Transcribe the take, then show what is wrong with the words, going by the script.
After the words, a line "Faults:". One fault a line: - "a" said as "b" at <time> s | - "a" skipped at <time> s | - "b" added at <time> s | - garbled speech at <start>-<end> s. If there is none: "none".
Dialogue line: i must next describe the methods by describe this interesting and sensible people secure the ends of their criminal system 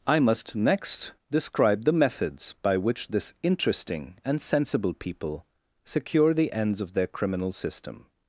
i must next describe the methods by which this interesting and sensible people secure the ends of their criminal system
Faults:
- "describe" said as "which" at 2.8 s